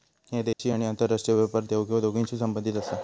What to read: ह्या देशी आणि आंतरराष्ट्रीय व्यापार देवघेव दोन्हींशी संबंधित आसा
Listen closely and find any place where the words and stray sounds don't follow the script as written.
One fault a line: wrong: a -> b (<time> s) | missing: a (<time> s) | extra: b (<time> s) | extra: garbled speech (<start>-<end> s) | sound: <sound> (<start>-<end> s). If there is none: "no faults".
sound: dropout (0.5-0.6 s)